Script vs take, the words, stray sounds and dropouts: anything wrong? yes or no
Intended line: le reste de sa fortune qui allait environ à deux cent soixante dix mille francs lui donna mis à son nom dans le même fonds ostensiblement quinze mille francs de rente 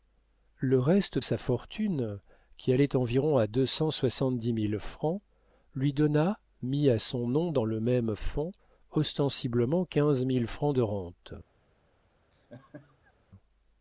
yes